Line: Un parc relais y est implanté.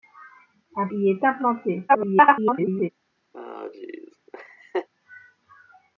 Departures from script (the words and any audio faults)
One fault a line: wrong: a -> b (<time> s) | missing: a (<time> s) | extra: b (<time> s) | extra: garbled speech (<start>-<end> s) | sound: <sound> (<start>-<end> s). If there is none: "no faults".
missing: parc relais (0.9 s)
extra: garbled speech (1.9-2.9 s)
sound: laugh (3.3-4.9 s)